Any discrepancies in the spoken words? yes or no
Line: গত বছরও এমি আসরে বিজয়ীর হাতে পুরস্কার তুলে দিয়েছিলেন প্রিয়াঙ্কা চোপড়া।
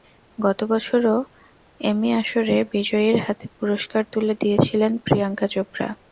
no